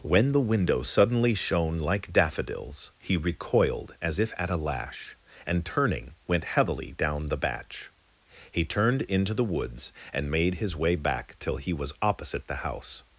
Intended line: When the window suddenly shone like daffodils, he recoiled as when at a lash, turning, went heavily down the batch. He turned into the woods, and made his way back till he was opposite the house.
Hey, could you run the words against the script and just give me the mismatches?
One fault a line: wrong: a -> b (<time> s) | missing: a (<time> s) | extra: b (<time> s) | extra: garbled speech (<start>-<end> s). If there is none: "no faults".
wrong: when -> if (4.2 s)
extra: and (5.5 s)